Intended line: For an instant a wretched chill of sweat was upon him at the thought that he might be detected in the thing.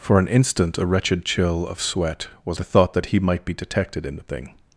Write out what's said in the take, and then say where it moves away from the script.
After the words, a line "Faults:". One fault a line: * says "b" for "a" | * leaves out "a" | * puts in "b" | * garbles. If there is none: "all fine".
For an instant a wretched chill of sweat was the thought that he might be detected in the thing.
Faults:
* leaves out "upon him at"